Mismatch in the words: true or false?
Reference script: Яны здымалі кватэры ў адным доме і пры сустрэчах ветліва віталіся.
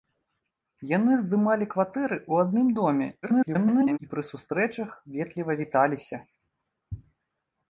true